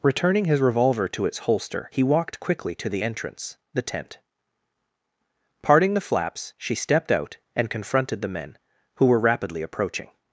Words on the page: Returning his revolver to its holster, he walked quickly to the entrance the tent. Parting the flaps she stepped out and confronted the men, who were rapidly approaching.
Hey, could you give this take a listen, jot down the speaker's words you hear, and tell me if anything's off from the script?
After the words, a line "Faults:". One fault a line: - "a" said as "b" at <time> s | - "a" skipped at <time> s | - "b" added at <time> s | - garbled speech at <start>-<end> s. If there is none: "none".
Returning his revolver to its holster, he walked quickly to the entrance the tent. Parting the flaps she stepped out and confronted the men, who were rapidly approaching.
Faults:
none